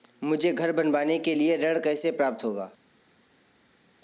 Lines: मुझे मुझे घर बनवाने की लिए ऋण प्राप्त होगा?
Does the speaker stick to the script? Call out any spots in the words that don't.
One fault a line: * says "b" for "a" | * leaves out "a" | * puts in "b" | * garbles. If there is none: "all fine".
* leaves out "मुझे"
* says "के" for "की"
* puts in "कैसे"